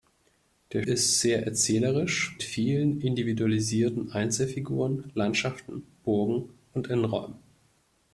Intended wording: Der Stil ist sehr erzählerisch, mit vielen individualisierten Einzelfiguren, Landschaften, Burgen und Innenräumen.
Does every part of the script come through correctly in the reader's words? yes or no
no